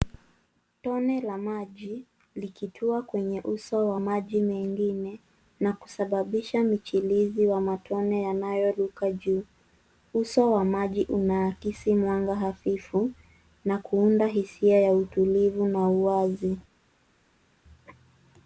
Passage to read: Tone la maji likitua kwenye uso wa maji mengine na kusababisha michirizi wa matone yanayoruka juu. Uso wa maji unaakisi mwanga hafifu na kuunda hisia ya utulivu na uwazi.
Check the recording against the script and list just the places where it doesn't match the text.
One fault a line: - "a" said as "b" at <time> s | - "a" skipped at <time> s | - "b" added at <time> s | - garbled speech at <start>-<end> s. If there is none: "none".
none